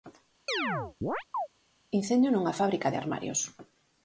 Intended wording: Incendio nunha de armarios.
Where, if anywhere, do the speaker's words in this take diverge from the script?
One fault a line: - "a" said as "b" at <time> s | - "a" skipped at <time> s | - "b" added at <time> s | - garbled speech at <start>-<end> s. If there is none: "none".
- "fábrica" added at 2.6 s